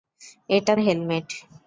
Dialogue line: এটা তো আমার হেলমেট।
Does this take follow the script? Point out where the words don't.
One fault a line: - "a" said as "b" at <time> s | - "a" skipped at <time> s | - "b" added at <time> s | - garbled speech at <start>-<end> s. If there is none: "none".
- "তো আমার" skipped at 0.7 s